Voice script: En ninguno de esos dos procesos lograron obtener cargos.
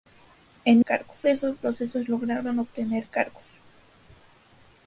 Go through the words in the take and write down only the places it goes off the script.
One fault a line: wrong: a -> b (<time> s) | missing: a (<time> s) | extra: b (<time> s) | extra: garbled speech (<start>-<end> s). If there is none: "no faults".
wrong: ninguno -> cargos (0.8 s)
missing: dos (1.5 s)